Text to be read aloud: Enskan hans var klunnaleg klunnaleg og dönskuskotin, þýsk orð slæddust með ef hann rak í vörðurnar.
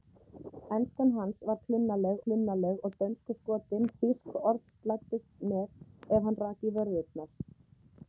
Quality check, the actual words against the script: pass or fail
pass